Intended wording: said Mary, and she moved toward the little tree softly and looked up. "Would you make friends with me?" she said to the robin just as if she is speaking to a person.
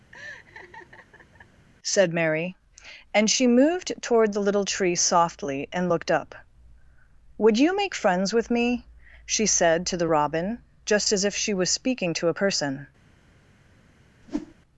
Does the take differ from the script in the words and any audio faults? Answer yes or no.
yes